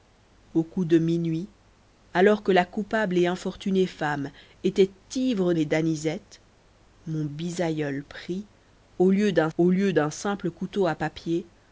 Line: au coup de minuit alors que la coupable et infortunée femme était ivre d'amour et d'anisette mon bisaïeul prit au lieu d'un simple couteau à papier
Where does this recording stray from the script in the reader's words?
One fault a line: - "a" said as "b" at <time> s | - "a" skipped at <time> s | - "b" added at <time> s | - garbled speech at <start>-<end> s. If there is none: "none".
- "d'amour" skipped at 5.5 s
- "au lieu d'un" added at 9.6 s